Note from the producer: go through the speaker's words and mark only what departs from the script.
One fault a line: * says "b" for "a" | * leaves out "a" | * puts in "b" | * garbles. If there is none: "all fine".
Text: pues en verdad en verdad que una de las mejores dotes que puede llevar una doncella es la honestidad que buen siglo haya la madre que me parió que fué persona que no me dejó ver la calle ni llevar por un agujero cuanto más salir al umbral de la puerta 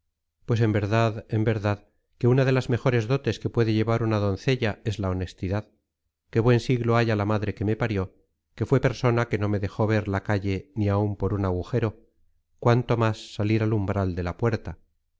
* says "áun" for "llevar"